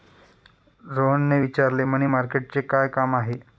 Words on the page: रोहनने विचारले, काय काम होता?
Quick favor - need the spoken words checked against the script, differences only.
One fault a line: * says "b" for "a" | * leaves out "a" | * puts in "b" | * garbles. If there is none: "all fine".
* puts in "मनी मार्केटचे"
* says "आहे" for "होता"